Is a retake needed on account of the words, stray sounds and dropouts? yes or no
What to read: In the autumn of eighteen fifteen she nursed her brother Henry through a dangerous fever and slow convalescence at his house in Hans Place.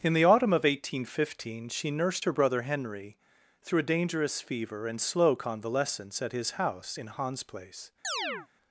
yes